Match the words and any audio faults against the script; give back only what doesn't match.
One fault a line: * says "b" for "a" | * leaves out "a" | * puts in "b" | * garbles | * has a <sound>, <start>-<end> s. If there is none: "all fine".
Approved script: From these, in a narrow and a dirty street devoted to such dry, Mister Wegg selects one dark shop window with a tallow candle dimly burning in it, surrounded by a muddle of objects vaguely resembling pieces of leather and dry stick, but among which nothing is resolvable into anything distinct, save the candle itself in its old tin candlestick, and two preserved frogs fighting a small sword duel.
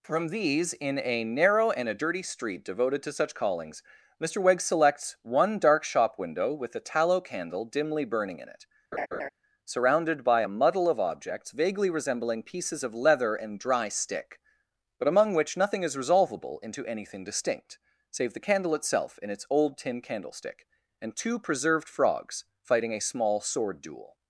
* says "callings" for "dry"
* has a laugh, 8.9-9.3 s